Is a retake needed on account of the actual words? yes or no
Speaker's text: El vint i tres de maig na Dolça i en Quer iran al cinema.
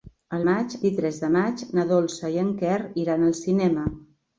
yes